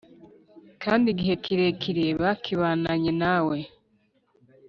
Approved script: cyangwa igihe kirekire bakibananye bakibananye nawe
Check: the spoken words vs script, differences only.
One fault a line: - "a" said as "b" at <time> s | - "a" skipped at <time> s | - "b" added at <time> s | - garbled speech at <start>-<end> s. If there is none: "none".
- "cyangwa" said as "kandi" at 0.8 s
- "bakibananye" skipped at 3.1 s